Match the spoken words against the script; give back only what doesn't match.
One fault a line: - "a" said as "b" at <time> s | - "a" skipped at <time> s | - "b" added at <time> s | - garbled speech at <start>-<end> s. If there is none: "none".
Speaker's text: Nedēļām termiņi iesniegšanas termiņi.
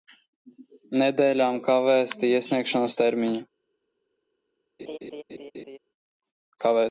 - "termiņi" said as "kavēti" at 1.7 s